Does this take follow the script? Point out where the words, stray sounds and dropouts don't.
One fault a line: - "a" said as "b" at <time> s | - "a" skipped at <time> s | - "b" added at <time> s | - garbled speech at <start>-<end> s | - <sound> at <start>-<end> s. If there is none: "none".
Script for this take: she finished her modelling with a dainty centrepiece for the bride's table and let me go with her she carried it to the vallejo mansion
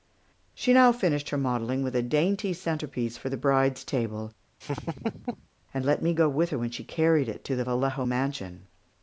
- "now" added at 0.7 s
- laugh at 4.6-5.5 s
- "when" added at 6.6 s